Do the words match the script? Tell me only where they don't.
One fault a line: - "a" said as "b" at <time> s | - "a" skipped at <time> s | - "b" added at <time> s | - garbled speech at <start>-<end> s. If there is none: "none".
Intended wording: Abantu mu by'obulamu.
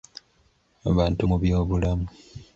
none